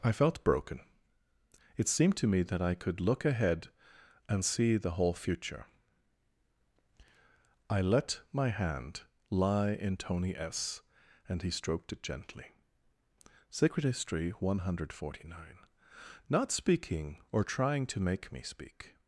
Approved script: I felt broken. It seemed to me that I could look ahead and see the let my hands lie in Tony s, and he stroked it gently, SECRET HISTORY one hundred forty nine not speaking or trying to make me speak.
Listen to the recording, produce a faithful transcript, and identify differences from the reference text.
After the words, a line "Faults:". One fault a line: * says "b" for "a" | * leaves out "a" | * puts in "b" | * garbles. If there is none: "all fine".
I felt broken. It seemed to me that I could look ahead and see the whole future. I let my hand lie in Tony s, and he stroked it gently, SECRET HISTORY one hundred forty nine not speaking or trying to make me speak.
Faults:
* puts in "whole future I"
* says "hand" for "hands"